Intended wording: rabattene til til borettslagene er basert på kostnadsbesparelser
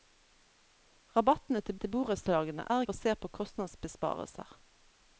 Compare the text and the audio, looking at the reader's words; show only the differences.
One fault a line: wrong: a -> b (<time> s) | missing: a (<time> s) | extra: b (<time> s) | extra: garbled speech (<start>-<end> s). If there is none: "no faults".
no faults